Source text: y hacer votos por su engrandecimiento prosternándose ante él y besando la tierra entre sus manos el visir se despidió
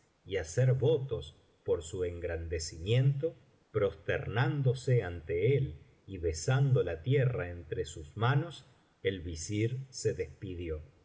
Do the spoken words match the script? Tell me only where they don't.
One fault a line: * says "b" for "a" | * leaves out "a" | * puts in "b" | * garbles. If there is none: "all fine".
all fine